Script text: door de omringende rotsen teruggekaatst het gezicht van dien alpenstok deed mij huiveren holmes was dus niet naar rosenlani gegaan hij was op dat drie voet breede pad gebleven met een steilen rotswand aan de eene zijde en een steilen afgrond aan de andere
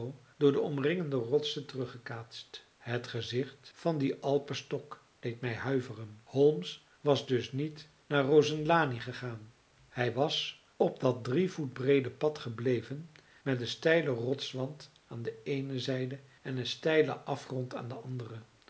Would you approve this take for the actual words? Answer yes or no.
yes